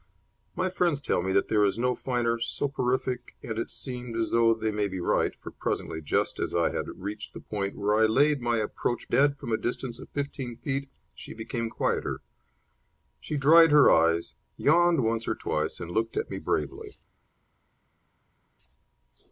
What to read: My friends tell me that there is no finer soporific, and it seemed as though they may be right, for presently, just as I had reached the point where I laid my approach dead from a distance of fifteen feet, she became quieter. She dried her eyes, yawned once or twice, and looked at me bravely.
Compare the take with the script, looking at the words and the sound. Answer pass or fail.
pass